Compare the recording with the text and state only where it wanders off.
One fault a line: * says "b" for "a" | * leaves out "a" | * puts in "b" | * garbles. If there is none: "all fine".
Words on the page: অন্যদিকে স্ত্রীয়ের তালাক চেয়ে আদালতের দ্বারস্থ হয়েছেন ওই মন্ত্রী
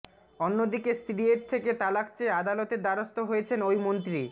* puts in "থেকে"